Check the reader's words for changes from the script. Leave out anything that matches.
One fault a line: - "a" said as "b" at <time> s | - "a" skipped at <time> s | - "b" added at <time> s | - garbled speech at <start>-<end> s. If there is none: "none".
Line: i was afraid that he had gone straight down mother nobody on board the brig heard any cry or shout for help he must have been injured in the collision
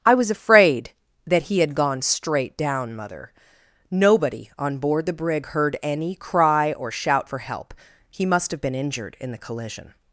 none